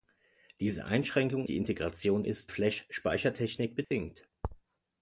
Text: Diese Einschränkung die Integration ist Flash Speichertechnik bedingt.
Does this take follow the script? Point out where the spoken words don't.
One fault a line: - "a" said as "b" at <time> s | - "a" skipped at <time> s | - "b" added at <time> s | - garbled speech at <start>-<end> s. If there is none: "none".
none